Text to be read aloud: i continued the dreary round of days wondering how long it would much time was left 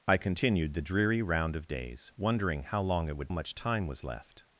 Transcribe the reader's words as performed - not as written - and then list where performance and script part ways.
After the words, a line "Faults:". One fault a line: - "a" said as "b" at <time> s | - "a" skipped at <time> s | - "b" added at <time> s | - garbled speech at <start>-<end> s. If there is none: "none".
i continued the dreary round of days wondering how long it would much time was left
Faults:
none